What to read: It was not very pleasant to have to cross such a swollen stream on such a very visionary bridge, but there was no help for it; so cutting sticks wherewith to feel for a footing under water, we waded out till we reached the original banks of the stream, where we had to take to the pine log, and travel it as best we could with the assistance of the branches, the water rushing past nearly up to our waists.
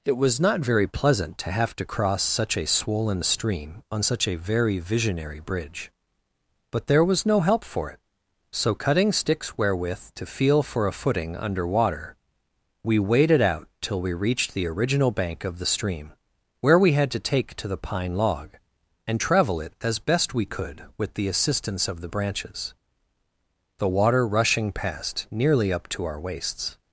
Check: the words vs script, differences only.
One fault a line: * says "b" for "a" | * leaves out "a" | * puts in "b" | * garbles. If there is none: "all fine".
* says "bank" for "banks"